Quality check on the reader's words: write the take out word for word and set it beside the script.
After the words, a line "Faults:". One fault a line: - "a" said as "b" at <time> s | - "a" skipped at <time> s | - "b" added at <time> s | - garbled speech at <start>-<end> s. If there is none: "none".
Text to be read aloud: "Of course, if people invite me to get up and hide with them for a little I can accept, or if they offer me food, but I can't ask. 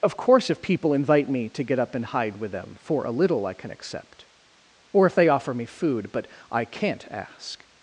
"Of course, if people invite me to get up and hide with them for a little I can accept, or if they offer me food, but I can't ask.
Faults:
none